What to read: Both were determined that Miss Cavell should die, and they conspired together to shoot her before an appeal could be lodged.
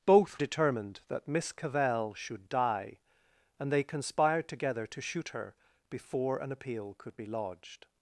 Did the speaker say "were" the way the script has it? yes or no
no